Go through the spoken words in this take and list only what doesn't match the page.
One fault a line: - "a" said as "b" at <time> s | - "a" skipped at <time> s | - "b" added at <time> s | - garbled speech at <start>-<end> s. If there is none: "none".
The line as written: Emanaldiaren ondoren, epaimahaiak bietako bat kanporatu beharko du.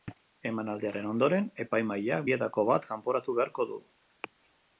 none